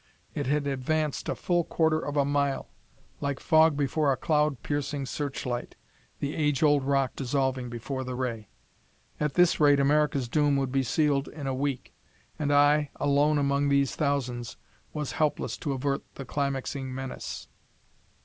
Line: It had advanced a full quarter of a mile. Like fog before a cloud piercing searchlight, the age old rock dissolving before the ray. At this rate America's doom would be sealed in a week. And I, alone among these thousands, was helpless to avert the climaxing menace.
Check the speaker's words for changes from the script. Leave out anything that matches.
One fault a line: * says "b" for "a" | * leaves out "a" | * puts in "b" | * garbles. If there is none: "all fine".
all fine